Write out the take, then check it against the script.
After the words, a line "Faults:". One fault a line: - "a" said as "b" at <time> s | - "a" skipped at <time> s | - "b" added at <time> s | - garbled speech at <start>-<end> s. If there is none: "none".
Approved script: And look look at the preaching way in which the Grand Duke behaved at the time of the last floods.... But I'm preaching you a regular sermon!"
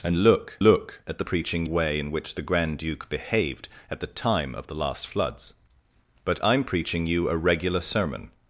And look look at the preaching way in which the Grand Duke behaved at the time of the last floods.... But I'm preaching you a regular sermon!"
Faults:
none